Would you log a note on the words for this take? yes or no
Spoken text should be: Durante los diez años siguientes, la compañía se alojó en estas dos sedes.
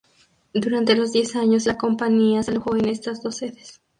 yes